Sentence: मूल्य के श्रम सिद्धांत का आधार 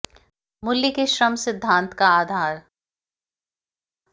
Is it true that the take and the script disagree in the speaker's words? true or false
false